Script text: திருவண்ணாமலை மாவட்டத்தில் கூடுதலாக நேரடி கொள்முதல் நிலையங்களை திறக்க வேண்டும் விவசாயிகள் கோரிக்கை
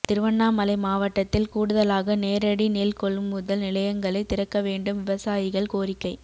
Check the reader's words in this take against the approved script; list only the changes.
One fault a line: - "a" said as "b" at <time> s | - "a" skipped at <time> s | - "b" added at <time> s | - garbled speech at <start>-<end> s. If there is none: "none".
- "நெல்" added at 2.7 s